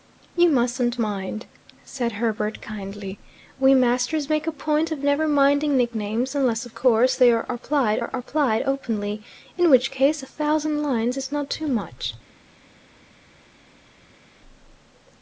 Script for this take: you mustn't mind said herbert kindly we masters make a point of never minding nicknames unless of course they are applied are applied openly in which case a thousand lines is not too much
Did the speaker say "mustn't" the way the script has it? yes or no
yes